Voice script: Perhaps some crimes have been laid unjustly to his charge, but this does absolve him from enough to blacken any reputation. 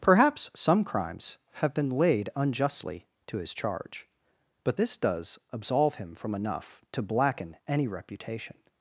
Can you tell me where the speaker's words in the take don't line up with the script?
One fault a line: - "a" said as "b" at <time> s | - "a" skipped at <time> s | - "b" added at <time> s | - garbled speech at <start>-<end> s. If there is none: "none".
none